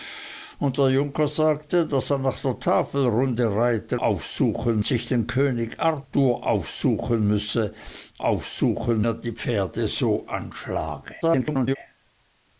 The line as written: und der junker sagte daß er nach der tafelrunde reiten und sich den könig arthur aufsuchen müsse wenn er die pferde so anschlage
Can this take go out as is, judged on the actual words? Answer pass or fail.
fail